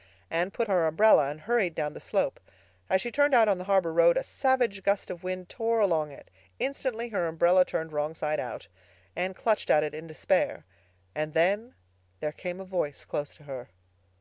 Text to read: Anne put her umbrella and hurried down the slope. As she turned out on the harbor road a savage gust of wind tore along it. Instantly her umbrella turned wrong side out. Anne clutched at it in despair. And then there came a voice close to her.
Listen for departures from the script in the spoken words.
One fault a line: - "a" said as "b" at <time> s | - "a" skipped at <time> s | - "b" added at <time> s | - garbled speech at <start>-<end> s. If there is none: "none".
none